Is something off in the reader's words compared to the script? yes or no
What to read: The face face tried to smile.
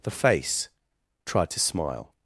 yes